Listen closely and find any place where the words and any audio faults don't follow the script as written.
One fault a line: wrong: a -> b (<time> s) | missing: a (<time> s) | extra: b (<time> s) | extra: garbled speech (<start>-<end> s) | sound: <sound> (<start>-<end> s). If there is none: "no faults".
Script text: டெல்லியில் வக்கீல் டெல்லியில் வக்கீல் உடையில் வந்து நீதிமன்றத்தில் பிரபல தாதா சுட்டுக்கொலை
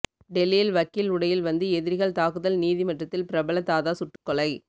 wrong: டெல்லியில் வக்கீல் உடையில் வந்து -> உடையில் வந்து எதிரிகள் தாக்குதல் (1.1 s)
sound: dropout (4.2-4.3 s)